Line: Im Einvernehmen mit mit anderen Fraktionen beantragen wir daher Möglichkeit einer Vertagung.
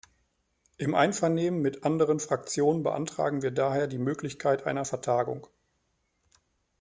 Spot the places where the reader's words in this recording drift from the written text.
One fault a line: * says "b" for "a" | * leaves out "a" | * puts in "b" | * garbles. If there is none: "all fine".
* leaves out "mit"
* puts in "die"